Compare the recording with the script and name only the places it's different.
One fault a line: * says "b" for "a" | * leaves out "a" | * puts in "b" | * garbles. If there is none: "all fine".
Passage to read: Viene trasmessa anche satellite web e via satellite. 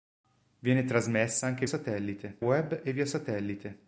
all fine